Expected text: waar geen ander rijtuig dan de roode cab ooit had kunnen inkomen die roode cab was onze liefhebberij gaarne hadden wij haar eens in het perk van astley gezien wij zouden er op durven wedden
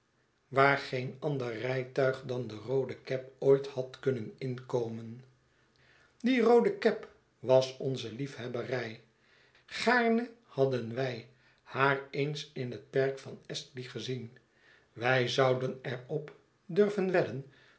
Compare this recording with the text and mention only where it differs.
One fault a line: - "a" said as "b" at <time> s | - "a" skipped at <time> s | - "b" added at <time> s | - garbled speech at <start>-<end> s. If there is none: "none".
none